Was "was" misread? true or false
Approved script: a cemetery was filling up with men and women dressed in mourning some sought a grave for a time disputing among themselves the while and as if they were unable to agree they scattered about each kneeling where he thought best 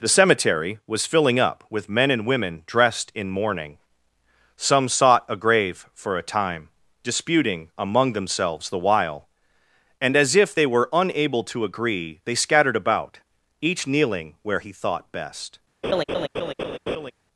false